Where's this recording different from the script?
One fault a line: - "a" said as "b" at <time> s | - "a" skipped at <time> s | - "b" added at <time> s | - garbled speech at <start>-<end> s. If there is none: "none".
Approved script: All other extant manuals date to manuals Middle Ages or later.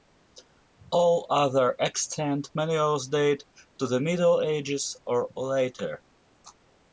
- "manuals" said as "the" at 3.9 s